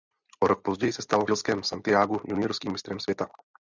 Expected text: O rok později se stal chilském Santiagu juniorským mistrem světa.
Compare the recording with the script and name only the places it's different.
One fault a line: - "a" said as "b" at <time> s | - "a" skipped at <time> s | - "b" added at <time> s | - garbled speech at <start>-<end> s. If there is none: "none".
none